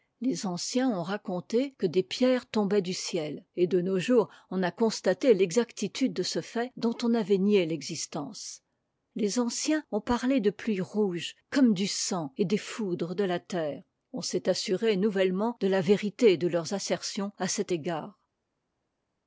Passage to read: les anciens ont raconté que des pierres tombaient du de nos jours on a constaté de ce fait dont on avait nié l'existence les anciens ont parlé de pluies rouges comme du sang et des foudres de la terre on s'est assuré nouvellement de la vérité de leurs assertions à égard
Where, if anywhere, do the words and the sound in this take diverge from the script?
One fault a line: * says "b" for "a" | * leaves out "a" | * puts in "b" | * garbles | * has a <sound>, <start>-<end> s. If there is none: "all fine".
* puts in "ciel et"
* puts in "l'exactitude"
* puts in "cet"